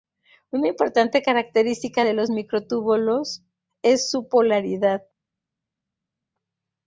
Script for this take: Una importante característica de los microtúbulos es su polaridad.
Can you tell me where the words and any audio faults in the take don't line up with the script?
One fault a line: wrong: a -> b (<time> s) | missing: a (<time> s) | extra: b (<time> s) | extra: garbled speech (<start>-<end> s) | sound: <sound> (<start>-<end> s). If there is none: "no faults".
no faults